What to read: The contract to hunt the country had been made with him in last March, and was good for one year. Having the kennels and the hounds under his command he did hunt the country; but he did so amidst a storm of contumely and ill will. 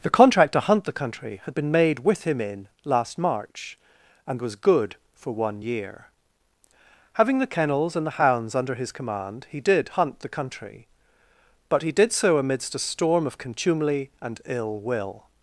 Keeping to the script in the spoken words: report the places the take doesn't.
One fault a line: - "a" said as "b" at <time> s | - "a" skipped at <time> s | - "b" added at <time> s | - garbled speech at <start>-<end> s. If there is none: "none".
none